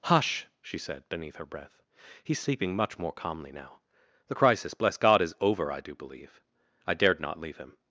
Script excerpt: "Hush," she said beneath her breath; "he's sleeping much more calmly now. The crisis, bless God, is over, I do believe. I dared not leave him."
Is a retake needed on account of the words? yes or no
no